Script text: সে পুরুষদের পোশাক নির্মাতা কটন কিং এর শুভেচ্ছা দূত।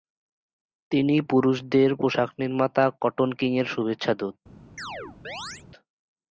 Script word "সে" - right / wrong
wrong